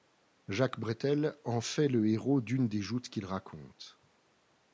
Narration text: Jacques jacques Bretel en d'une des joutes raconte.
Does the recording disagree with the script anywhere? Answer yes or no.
yes